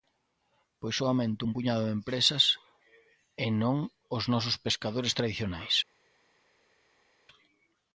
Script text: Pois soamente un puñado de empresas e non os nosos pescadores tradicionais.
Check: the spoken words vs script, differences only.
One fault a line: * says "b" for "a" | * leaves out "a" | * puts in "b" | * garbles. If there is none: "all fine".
all fine